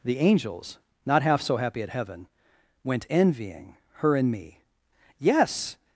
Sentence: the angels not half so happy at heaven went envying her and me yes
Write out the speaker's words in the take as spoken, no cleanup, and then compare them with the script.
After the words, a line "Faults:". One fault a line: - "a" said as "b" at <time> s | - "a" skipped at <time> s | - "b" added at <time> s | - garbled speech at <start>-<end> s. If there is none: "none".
the angels not half so happy at heaven went envying her and me yes
Faults:
none